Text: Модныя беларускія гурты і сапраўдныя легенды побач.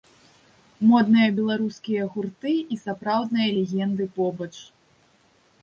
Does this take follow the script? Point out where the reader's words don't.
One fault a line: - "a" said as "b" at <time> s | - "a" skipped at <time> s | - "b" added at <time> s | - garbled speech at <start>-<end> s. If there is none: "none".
none